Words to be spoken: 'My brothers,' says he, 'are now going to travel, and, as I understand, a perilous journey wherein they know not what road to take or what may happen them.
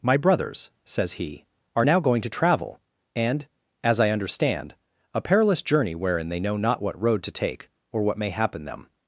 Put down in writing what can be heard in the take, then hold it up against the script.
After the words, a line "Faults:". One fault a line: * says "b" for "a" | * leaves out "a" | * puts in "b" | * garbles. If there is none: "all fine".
'My brothers,' says he, 'are now going to travel, and, as I understand, a perilous journey wherein they know not what road to take or what may happen them.
Faults:
all fine